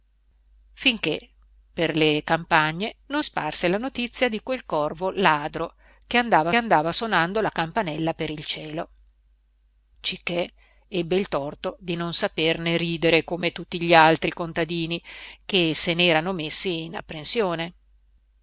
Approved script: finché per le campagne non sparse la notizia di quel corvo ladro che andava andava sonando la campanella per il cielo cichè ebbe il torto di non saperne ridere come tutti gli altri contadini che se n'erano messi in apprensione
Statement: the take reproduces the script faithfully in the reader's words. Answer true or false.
true